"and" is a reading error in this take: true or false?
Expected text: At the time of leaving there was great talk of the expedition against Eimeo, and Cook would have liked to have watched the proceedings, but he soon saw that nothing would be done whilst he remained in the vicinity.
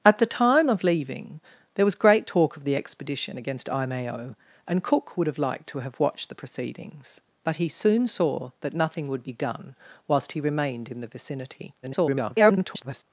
false